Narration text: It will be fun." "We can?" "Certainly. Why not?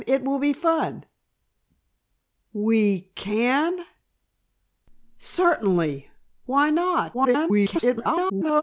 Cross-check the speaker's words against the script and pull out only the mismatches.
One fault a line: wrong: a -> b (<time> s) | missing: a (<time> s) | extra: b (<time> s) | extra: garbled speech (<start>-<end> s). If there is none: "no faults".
extra: garbled speech (7.1-8.6 s)